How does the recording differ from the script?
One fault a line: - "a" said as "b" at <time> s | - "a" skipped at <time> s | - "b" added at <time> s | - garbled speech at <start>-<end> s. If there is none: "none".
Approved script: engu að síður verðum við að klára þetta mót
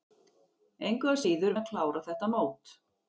- "verðum" skipped at 1.6 s